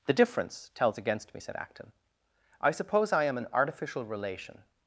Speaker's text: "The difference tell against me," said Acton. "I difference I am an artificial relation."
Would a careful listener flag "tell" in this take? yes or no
yes